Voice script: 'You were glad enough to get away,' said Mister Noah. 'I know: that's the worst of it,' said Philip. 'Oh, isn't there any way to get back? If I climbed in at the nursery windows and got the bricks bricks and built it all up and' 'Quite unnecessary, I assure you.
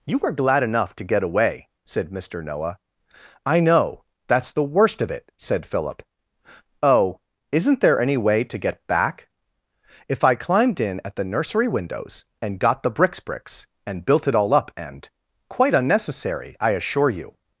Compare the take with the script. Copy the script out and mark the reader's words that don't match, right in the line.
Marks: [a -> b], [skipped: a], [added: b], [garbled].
'You were glad enough to get away,' said Mister Noah. 'I know: that's the worst of it,' said Philip. 'Oh, isn't there any way to get back? If I climbed in at the nursery windows and got the bricks bricks and built it all up and' 'Quite unnecessary, I assure you.